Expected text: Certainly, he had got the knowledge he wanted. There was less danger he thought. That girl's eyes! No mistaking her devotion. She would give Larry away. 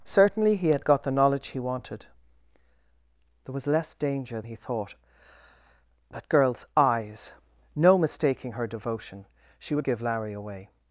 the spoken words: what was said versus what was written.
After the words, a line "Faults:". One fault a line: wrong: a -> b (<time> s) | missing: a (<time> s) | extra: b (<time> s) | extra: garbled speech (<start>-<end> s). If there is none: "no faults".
Certainly, he had got the knowledge he wanted. There was less danger he thought. That girl's eyes! No mistaking her devotion. She would give Larry away.
Faults:
no faults